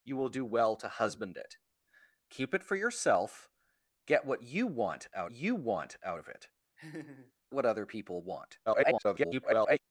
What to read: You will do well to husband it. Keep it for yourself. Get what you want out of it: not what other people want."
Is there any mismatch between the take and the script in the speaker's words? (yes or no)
yes